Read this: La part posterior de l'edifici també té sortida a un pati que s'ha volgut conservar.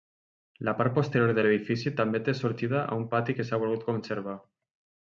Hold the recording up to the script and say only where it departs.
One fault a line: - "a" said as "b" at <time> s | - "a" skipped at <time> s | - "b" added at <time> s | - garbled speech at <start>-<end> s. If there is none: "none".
none